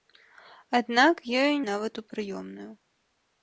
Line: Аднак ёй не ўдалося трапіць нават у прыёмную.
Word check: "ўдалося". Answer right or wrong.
wrong